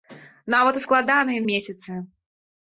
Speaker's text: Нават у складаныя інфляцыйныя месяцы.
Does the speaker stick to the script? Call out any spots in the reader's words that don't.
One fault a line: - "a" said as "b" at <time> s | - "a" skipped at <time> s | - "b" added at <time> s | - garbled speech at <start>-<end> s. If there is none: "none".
- "інфляцыйныя" skipped at 1.4 s